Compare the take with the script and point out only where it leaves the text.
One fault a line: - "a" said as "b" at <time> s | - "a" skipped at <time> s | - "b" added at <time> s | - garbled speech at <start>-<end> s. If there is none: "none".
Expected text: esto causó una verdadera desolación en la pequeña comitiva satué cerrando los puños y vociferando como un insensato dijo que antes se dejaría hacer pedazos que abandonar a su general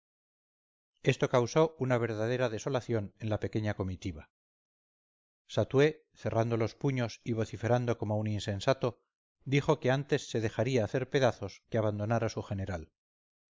none